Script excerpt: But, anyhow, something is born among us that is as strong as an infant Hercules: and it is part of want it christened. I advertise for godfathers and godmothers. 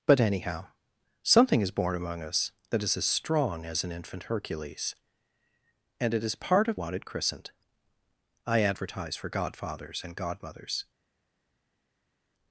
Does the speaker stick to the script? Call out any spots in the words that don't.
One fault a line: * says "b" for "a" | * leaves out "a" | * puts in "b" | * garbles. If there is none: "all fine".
all fine